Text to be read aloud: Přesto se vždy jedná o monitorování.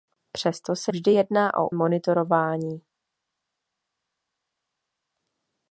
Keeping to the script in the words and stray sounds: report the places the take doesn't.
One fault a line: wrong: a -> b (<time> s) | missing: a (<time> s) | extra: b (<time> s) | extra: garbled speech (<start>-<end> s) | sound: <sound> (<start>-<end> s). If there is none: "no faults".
no faults